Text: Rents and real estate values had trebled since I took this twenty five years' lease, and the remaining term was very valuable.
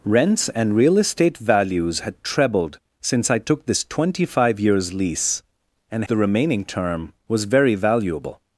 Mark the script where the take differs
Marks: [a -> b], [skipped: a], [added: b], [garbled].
Rents and real estate values had trebled since I took this twenty five years' lease, and the remaining term was very valuable.